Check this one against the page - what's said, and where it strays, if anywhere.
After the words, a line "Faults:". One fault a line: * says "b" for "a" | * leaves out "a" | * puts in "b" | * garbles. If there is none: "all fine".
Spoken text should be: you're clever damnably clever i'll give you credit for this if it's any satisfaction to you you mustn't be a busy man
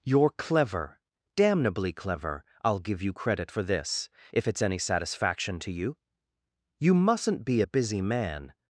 you're clever damnably clever i'll give you credit for this if it's any satisfaction to you you mustn't be a busy man
Faults:
all fine